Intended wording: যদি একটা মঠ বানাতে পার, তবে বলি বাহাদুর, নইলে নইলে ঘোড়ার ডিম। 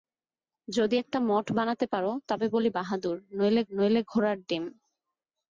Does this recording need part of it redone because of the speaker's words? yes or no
no